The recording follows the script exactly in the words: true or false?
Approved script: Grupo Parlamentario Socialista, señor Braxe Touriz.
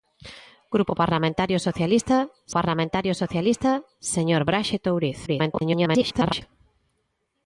false